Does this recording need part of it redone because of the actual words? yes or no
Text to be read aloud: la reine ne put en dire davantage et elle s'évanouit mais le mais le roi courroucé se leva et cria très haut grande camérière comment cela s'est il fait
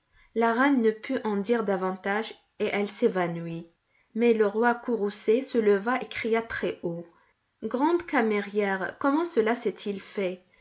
yes